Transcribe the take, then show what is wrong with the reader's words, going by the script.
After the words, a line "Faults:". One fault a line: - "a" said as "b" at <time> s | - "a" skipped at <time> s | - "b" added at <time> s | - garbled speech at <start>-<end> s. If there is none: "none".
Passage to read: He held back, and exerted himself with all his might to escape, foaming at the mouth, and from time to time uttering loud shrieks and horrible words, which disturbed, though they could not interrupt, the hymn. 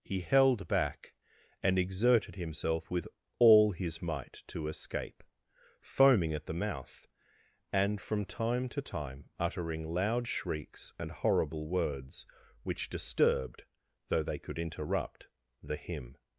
He held back, and exerted himself with all his might to escape, foaming at the mouth, and from time to time uttering loud shrieks and horrible words, which disturbed, though they could interrupt, the hymn.
Faults:
- "not" skipped at 14.6 s